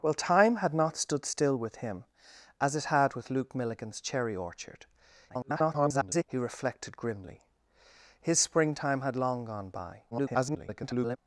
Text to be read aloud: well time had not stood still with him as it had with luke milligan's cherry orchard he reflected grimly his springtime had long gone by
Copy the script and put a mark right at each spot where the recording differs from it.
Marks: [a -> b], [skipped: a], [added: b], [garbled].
well time had not stood still with him as it had with luke milligan's cherry orchard [garbled] he reflected grimly his springtime had long gone by [garbled]